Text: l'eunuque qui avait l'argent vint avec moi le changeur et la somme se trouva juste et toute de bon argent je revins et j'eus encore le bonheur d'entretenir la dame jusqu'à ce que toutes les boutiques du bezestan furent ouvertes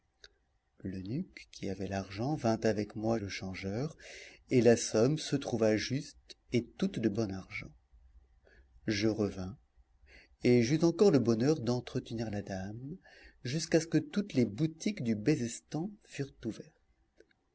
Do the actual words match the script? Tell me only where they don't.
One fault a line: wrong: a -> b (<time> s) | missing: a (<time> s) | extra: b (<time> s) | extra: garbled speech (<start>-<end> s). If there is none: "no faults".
no faults